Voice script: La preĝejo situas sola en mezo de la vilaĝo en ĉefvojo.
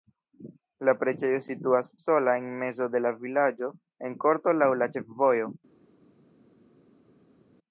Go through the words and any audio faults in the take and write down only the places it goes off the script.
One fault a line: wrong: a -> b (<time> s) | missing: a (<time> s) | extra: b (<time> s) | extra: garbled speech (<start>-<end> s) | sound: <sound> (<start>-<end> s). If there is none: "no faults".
extra: korto laŭ la (4.3 s)